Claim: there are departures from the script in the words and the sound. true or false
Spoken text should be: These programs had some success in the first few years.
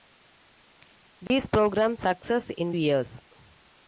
true